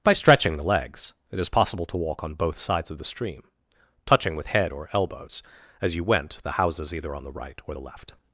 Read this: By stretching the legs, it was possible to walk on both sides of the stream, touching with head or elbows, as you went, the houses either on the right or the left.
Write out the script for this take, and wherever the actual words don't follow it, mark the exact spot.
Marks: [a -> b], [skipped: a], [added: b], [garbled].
By stretching the legs, it [was -> is] possible to walk on both sides of the stream, touching with head or elbows, as you went, the houses either on the right or the left.